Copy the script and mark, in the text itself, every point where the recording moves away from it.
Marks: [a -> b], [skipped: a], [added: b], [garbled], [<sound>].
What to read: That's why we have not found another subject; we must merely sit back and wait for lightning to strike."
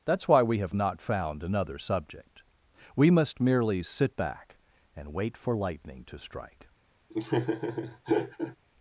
That's why we have not found another subject; we must merely sit back and wait for lightning to strike." [laugh]